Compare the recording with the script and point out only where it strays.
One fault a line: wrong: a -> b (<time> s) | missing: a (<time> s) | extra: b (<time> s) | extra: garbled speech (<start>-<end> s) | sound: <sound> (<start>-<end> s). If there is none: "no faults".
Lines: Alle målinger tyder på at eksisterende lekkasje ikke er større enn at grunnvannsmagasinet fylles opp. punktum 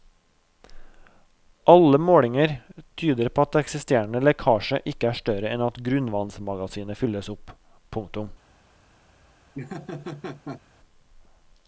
sound: laugh (9.5-10.6 s)